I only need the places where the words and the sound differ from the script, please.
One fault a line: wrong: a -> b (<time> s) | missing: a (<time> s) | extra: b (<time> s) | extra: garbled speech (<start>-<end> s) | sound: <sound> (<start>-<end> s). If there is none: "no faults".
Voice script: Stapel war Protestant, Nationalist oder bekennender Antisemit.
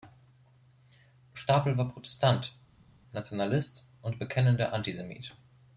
wrong: oder -> und (4.0 s)